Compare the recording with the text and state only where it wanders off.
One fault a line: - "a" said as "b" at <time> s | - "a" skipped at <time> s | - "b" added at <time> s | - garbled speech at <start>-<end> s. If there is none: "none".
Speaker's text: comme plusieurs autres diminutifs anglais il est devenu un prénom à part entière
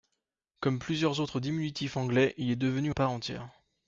- "un prénom" skipped at 2.9 s